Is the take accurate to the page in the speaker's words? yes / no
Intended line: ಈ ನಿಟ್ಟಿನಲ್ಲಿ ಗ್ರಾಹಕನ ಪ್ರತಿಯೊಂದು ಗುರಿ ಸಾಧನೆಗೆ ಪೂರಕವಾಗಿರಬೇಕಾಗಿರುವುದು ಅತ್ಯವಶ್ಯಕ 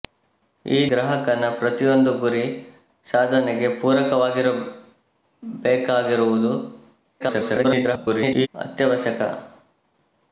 no